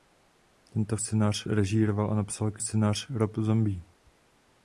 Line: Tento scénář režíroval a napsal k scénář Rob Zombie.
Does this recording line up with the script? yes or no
yes